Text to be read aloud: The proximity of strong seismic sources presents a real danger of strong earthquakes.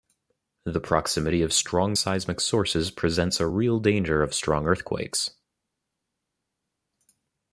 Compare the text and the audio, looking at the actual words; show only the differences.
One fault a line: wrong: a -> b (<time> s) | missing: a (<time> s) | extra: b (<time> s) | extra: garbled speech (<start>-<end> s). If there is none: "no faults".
no faults